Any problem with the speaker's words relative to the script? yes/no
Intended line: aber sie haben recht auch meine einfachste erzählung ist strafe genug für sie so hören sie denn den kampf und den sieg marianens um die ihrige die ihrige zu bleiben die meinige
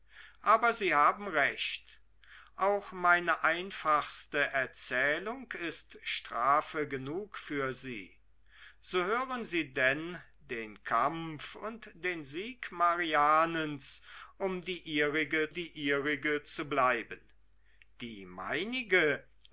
no